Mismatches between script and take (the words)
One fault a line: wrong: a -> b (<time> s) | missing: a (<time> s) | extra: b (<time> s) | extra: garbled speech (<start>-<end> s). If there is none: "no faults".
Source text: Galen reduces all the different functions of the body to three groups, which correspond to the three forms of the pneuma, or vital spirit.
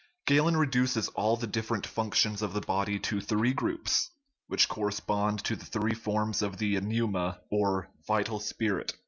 no faults